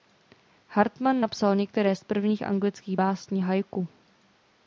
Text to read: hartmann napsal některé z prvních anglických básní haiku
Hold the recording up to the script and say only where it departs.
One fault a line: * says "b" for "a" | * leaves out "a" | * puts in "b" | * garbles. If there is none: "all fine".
all fine